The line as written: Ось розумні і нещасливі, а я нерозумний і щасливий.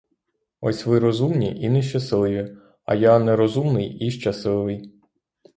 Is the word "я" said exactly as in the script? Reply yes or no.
yes